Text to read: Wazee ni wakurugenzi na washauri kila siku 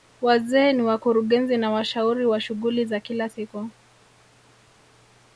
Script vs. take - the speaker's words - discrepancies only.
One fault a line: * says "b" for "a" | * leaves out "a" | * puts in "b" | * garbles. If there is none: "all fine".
* puts in "wa shughuli za"